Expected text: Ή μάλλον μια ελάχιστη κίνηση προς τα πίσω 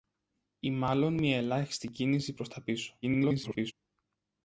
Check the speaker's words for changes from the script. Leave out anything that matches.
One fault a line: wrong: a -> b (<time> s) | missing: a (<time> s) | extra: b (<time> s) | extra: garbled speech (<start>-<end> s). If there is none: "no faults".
extra: garbled speech (3.0-3.7 s)